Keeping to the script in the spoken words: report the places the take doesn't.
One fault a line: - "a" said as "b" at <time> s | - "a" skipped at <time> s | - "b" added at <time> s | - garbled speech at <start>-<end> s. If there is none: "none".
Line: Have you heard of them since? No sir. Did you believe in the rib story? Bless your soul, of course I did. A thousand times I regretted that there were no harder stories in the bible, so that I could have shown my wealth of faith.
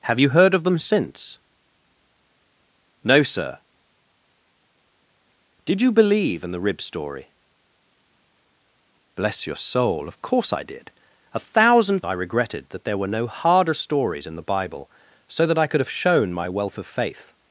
- "times" skipped at 12.0 s